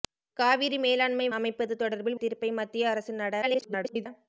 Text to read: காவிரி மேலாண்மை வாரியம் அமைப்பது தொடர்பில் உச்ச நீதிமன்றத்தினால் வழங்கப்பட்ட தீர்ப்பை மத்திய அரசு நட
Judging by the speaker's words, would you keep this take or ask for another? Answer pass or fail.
fail